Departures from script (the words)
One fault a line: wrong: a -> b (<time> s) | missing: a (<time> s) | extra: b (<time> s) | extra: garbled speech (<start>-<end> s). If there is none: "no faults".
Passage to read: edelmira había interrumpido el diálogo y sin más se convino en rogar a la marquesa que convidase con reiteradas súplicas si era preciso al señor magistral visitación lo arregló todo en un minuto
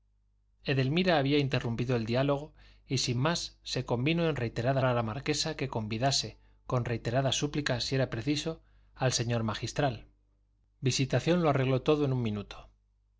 wrong: rogar -> reiteradas (4.4 s)